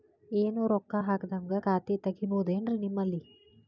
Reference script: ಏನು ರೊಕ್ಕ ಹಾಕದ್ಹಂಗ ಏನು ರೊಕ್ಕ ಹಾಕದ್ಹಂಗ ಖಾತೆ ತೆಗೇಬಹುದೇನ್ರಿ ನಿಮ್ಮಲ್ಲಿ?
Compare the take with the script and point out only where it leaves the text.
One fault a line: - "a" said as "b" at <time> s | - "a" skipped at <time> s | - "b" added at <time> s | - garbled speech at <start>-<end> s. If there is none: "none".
- "ಏನು ರೊಕ್ಕ ಹಾಕದ್ಹಂಗ" skipped at 1.6 s